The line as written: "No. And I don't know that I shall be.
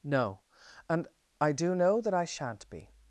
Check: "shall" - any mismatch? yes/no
yes